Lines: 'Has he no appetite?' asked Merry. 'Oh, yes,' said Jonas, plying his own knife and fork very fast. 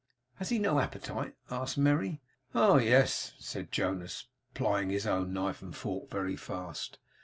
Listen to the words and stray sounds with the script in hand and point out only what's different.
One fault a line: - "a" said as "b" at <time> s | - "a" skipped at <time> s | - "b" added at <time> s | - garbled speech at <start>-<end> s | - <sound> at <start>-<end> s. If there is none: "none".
none